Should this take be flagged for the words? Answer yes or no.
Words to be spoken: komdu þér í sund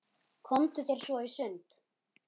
yes